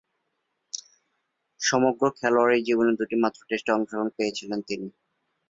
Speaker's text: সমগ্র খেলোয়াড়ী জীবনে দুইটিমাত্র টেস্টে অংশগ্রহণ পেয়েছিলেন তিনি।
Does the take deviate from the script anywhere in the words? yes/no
no